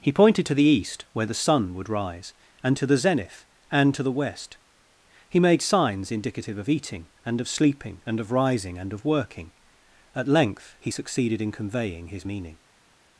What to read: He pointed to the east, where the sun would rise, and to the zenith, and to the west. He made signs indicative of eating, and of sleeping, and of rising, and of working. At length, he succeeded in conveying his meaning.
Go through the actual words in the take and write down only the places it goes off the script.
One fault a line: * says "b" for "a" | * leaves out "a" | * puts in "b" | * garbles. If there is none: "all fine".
all fine